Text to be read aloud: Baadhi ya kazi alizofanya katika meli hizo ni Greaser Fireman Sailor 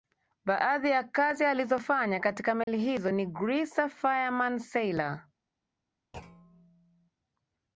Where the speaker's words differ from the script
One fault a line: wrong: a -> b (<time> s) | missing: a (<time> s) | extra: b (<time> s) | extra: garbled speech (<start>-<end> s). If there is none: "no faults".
no faults